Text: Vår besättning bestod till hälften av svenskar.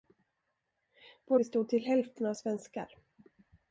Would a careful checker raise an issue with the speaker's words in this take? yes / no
yes